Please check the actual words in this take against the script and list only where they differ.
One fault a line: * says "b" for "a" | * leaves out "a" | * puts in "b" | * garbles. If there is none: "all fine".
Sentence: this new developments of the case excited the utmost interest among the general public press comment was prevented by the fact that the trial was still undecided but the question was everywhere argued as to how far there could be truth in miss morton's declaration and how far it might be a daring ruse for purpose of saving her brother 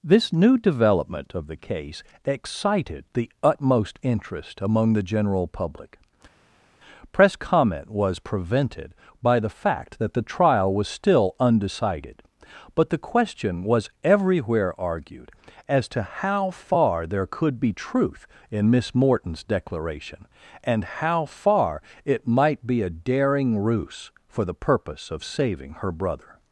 * says "development" for "developments"
* puts in "the"